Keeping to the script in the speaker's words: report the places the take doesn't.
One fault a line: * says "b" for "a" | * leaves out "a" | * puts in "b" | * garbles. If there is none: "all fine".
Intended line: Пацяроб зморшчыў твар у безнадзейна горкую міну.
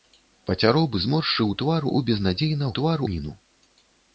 * says "твар" for "горкую"